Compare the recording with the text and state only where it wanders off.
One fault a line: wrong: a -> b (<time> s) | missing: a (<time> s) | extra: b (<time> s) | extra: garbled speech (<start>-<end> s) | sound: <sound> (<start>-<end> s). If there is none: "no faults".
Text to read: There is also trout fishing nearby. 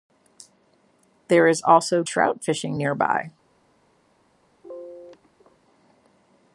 sound: sneeze (4.6-5.6 s)